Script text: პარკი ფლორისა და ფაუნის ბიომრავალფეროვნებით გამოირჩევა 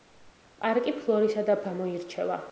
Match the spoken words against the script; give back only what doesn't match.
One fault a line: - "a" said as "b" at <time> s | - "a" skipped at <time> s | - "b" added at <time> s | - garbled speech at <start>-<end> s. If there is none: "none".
- "ფაუნის ბიომრავალფეროვნებით" skipped at 1.6 s